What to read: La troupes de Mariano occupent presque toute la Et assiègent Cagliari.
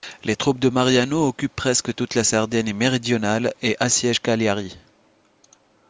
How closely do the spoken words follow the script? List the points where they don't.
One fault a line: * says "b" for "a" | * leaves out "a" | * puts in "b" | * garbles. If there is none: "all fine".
* says "Les" for "La"
* puts in "Sardaigne méridionale"